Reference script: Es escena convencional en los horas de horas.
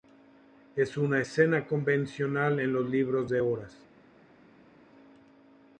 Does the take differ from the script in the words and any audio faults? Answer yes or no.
yes